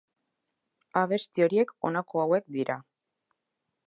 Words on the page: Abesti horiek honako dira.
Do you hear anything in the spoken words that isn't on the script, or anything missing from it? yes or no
yes